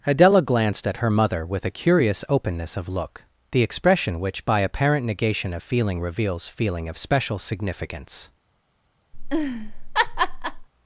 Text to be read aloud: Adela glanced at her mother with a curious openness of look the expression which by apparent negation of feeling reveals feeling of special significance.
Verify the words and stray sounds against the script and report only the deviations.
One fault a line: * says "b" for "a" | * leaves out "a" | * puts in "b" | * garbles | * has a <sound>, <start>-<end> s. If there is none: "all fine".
* has a laugh, 9.1-10.7 s